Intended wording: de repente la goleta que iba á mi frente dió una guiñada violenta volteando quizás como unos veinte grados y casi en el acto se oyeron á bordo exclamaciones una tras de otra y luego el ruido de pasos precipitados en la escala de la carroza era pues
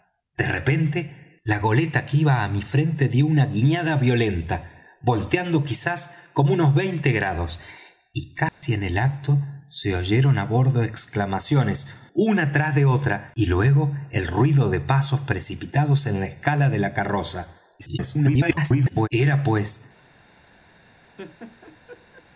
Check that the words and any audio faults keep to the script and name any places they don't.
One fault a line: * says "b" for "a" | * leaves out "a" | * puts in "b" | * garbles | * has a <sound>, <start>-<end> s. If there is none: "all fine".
* has a dropout, 8.5-8.6 s
* garbles
* has a laugh, 21.2-22.3 s